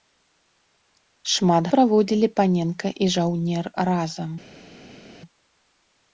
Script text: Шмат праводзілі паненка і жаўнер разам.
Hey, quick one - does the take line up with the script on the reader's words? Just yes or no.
yes